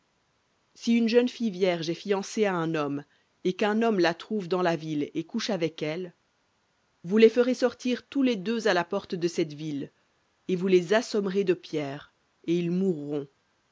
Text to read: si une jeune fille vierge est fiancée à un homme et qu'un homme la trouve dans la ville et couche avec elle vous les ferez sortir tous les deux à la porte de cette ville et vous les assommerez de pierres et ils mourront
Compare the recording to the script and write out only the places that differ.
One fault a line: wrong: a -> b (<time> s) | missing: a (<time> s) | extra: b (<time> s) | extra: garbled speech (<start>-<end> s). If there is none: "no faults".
no faults